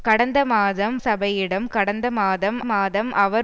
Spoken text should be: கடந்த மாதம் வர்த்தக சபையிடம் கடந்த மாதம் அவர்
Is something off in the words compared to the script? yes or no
yes